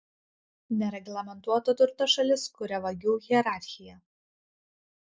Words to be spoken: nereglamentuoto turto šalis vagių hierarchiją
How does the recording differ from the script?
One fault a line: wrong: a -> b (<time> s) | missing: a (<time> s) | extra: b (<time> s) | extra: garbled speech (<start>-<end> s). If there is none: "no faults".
extra: kuria (2.6 s)